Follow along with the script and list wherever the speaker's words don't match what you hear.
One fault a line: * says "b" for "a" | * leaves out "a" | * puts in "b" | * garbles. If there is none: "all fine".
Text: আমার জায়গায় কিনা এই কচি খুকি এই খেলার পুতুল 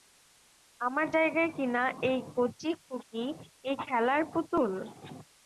all fine